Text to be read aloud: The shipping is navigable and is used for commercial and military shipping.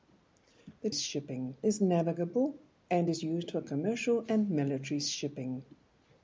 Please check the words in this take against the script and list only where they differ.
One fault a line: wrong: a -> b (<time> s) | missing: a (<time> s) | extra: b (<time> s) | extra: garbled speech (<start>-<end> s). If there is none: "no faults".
no faults